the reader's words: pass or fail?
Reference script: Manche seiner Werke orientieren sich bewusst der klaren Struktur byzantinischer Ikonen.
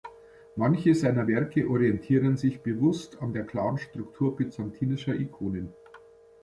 fail